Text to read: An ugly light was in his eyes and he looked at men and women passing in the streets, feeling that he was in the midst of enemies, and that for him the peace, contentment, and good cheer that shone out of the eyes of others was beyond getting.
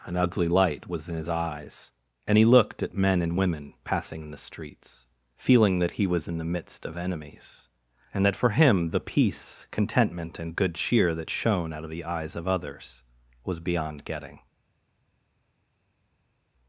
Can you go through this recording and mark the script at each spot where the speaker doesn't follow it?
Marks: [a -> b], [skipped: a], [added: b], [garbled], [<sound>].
An ugly light was in his eyes and he looked at men and women passing in the streets, feeling that he was in the midst of enemies, and that for him the peace, contentment, and good cheer that shone out of the eyes of others was beyond getting.